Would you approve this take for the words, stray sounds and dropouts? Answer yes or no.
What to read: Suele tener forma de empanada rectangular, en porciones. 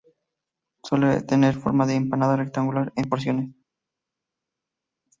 yes